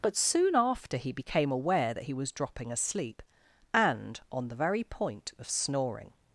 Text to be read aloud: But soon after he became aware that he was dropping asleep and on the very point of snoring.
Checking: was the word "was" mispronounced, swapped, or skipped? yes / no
no